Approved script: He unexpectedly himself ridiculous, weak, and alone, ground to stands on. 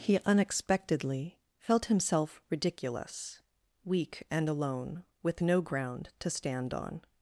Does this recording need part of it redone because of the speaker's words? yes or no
yes